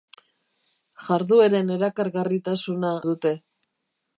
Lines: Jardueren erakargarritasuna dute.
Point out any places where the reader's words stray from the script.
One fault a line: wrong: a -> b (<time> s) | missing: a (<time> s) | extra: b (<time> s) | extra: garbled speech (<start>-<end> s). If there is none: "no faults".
no faults